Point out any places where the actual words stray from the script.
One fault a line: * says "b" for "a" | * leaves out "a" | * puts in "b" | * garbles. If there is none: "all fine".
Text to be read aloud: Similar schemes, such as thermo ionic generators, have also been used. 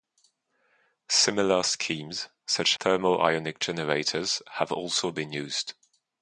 * leaves out "as"